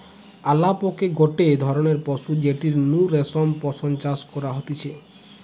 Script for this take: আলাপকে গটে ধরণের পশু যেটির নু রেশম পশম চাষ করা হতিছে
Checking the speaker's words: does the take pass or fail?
pass